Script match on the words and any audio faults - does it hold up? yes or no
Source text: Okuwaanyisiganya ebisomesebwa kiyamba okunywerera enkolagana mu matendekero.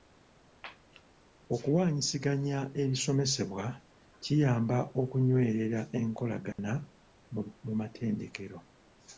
no